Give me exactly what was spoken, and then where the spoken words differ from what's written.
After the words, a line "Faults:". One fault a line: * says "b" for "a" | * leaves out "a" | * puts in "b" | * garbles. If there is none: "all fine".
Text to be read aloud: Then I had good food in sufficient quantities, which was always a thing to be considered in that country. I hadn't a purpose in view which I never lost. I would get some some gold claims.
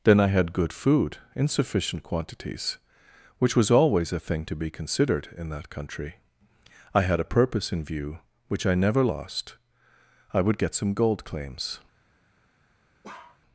Then I had good food in sufficient quantities, which was always a thing to be considered in that country. I had a purpose in view which I never lost. I would get some gold claims.
Faults:
* says "had" for "hadn't"
* leaves out "some"